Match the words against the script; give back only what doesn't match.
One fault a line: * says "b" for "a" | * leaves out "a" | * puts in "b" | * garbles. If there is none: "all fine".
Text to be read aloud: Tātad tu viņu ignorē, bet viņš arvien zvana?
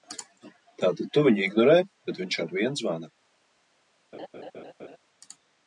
all fine